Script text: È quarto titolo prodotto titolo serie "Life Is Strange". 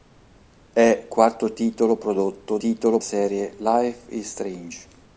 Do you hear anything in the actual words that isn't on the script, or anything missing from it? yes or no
no